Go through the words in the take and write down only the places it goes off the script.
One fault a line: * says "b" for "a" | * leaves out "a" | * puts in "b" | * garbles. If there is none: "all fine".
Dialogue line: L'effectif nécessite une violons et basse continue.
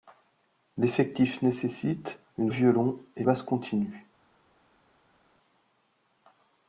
all fine